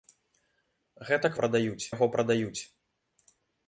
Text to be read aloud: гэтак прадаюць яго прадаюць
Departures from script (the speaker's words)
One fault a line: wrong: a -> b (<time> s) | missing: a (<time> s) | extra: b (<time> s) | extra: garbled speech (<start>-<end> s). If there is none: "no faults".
no faults